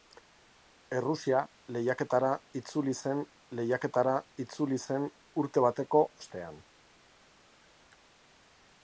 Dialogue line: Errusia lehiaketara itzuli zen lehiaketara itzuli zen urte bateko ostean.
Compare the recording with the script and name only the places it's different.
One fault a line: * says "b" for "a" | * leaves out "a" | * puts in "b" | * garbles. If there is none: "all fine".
all fine